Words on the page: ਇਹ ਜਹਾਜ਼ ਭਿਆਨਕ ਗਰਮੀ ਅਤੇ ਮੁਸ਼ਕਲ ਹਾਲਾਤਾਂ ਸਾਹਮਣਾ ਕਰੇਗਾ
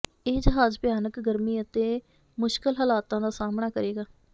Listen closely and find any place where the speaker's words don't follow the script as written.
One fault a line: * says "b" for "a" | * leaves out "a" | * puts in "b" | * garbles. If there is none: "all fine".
* puts in "ਦਾ"